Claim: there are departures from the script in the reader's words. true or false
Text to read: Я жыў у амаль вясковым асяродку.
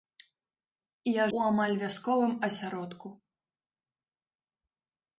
true